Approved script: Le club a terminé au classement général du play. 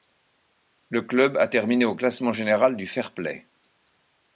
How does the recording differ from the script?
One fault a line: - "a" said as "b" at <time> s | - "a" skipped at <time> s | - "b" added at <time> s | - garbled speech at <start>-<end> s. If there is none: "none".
- "fair" added at 2.9 s